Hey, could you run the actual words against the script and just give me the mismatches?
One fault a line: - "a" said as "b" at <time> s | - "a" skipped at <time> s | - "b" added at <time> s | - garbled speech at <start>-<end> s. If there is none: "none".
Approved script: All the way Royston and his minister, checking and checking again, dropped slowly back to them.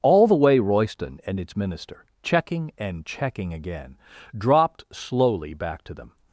- "his" said as "its" at 1.4 s